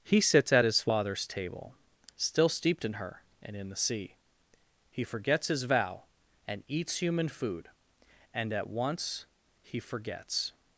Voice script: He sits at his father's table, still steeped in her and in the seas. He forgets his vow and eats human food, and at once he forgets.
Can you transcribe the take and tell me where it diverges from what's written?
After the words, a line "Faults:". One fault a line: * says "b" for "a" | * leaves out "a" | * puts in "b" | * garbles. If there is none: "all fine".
He sits at his father's table, still steeped in her and in the sea. He forgets his vow and eats human food, and at once he forgets.
Faults:
* says "sea" for "seas"